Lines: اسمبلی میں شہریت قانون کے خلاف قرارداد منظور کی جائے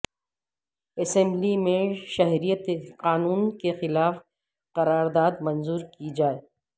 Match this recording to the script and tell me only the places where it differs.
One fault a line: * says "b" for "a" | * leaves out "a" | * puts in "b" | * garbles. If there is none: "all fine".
all fine